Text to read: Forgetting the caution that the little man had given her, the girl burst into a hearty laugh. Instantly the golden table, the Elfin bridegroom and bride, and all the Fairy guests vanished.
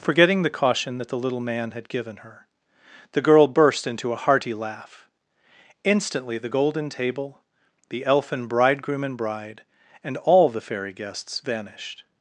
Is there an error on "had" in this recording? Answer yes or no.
no